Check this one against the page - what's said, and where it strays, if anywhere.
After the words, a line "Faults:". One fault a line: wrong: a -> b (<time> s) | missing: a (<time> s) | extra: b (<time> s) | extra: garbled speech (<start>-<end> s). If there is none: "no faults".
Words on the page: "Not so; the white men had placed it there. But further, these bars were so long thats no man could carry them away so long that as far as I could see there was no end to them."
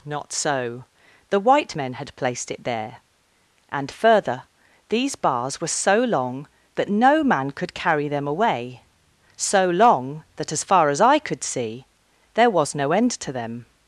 "Not so; the white men had placed it there. And further, these bars were so long that no man could carry them away so long that as far as I could see there was no end to them."
Faults:
wrong: But -> And (3.7 s)
wrong: thats -> that (6.8 s)